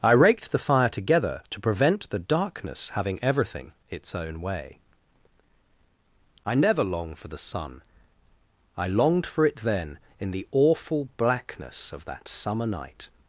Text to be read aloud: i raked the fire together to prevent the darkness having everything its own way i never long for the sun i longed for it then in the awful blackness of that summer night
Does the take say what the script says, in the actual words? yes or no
yes